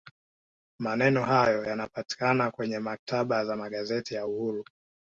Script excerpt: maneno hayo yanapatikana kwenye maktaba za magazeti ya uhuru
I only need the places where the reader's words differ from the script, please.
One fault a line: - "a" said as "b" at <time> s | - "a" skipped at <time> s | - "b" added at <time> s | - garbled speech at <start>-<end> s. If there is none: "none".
none